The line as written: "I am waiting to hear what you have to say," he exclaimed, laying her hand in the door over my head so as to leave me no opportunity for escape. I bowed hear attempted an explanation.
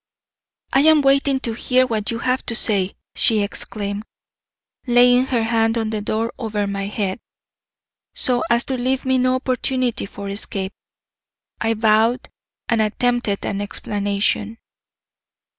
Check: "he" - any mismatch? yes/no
yes